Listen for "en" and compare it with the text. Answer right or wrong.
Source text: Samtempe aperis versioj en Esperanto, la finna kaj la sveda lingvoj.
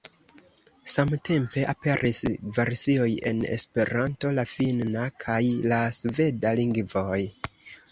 right